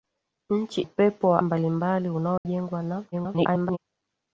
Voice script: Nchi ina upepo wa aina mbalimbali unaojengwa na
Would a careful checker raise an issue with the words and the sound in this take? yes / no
yes